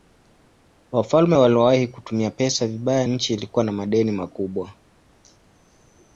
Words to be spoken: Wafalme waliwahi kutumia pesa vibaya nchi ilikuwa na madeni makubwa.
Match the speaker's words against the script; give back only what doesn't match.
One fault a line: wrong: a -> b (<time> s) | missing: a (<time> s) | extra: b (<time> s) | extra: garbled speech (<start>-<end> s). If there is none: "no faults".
no faults